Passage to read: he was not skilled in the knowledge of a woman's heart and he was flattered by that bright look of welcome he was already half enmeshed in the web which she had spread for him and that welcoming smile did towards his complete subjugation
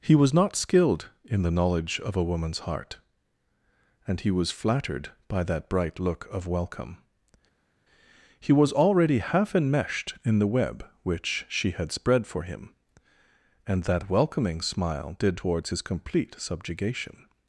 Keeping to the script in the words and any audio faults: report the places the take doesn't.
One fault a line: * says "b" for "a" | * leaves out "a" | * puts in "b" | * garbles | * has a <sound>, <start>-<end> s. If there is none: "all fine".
all fine